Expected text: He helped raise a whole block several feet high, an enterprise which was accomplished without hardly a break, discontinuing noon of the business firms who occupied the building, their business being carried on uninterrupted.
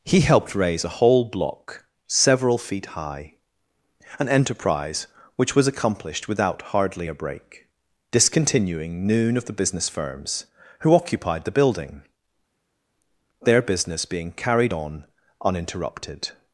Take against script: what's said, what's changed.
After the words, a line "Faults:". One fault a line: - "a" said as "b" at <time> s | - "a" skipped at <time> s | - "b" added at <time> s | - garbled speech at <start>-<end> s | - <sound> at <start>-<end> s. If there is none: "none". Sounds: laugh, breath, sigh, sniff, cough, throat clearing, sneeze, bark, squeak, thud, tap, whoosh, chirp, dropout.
He helped raise a whole block several feet high, an enterprise which was accomplished without hardly a break, discontinuing noon of the business firms who occupied the building, their business being carried on uninterrupted.
Faults:
none